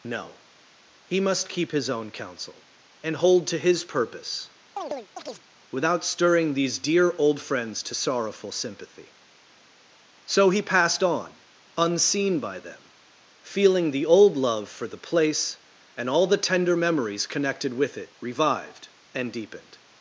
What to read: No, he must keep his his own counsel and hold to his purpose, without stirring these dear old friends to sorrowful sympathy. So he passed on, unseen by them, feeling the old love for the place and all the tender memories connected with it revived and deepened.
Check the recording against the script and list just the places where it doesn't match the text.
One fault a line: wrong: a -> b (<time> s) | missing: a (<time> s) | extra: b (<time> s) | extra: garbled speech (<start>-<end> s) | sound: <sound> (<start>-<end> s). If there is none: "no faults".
missing: his (1.9 s)
sound: chirp (4.8-5.5 s)